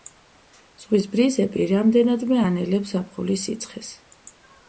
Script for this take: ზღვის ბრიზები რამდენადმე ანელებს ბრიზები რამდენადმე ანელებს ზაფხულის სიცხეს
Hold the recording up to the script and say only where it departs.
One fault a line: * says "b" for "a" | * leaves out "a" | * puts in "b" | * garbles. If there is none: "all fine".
* leaves out "ბრიზები რამდენადმე ანელებს"